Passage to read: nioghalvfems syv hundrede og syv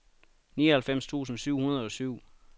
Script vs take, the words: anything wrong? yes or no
yes